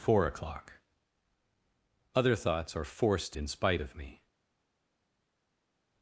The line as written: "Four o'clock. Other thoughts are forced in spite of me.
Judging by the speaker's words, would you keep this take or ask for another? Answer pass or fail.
pass